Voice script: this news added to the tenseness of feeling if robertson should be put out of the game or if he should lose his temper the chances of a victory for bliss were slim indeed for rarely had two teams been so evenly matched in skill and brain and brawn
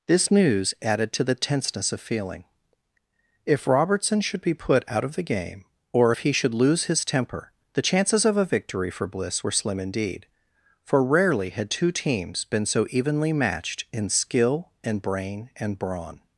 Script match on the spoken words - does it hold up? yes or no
yes